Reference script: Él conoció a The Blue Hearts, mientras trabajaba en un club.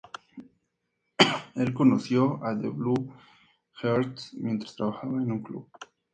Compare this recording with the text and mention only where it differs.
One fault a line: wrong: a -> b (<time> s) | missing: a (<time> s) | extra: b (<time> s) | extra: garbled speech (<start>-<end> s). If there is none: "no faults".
no faults